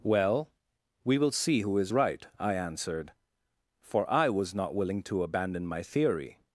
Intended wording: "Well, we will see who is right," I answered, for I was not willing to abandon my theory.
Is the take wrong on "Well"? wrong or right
right